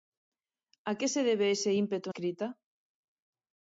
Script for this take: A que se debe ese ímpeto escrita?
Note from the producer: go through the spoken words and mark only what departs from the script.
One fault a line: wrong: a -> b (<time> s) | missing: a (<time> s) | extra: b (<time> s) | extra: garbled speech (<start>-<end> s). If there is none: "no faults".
no faults